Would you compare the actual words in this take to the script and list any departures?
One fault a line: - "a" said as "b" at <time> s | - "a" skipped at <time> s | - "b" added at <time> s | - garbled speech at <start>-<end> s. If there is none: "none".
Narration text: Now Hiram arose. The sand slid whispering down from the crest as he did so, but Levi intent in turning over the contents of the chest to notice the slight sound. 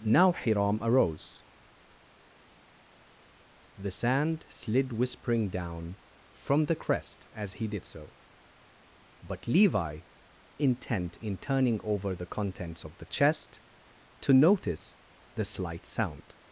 none